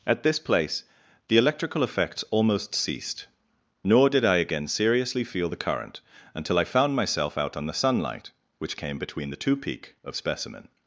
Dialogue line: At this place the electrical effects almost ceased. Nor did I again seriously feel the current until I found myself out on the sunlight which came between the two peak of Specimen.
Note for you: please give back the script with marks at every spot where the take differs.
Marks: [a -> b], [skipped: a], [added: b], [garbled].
At this place the electrical effects almost ceased. Nor did I again seriously feel the current until I found myself out on the sunlight which came between the two peak of Specimen.